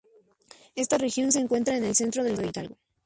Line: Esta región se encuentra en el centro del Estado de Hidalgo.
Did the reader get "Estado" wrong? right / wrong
wrong